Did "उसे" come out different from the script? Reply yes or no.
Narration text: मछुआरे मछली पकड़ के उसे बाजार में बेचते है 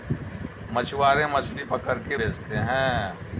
yes